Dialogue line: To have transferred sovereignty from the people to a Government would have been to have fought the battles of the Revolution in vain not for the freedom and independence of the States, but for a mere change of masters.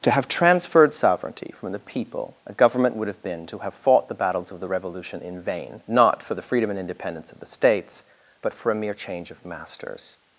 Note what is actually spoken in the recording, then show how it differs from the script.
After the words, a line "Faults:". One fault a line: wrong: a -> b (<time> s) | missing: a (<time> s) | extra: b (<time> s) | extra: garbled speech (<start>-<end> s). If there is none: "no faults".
To have transferred sovereignty from the people a Government would have been to have fought the battles of the Revolution in vain not for the freedom and independence of the States, but for a mere change of masters.
Faults:
missing: to (2.4 s)